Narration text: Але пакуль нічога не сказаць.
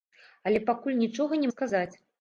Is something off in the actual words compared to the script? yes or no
no